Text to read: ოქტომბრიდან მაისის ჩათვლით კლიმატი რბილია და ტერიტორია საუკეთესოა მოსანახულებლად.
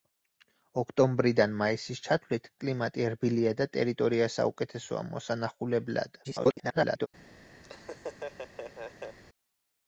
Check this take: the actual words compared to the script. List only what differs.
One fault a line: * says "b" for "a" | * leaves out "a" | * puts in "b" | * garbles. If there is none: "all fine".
* garbles